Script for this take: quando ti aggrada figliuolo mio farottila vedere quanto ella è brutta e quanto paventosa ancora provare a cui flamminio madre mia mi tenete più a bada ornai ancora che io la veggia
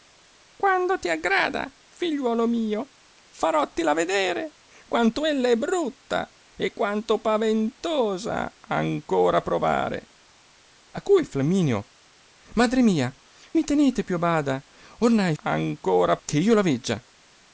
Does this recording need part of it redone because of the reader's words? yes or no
no